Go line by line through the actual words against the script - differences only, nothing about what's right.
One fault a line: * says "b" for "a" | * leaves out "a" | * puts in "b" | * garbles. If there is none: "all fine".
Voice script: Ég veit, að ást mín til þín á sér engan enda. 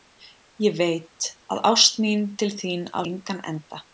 * leaves out "sér"